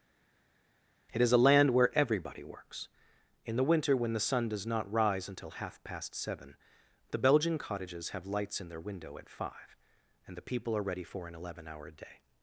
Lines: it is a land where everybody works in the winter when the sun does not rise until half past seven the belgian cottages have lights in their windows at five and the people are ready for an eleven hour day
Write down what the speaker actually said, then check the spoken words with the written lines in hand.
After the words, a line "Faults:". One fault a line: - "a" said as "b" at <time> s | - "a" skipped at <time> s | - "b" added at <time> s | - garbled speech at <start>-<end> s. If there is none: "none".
it is a land where everybody works in the winter when the sun does not rise until half past seven the belgian cottages have lights in their window at five and the people are ready for an eleven hour day
Faults:
- "windows" said as "window" at 8.8 s